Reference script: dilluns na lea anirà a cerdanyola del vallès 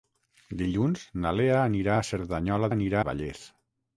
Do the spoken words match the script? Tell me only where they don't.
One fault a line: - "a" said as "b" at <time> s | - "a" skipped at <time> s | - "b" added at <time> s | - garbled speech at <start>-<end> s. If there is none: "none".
- "del" said as "anirà" at 2.7 s